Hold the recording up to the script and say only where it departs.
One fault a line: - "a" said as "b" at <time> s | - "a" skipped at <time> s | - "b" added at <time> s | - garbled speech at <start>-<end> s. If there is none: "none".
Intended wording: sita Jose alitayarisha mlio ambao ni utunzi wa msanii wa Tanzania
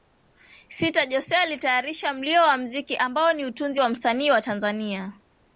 - "wa mziki" added at 2.4 s